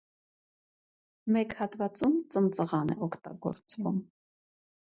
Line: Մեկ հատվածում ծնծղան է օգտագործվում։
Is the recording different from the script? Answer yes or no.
no